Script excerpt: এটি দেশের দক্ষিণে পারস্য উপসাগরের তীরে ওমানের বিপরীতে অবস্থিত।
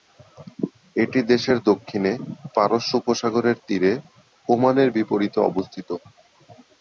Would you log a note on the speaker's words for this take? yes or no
no